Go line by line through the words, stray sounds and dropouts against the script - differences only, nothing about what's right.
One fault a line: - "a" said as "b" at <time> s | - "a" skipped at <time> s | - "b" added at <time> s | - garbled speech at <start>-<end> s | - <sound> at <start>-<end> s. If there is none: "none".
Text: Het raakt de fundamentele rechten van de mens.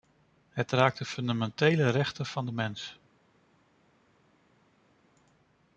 none